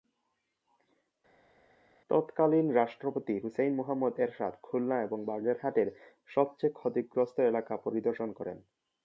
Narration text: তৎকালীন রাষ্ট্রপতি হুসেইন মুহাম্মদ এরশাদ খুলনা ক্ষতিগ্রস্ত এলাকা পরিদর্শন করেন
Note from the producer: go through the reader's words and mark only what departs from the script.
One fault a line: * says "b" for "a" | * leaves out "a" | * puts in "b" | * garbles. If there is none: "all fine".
* puts in "এবং বাগেরহাটের সবচেয়ে"